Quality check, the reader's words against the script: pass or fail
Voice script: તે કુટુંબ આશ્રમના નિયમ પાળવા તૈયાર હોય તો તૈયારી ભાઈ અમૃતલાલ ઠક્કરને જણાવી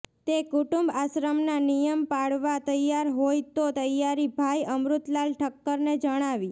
pass